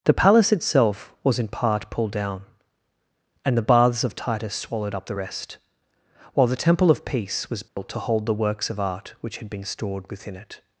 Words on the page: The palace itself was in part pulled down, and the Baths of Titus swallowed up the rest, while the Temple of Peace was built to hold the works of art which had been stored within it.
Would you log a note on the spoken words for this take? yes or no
no